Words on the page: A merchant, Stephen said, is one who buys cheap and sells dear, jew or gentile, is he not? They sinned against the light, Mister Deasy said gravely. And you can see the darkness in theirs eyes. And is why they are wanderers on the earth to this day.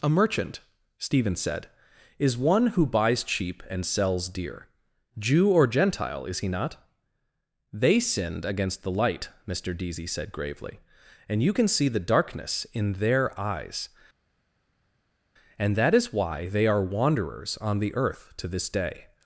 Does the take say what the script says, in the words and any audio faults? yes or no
no